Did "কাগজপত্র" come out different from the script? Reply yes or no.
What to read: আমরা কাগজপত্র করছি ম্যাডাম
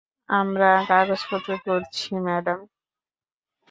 no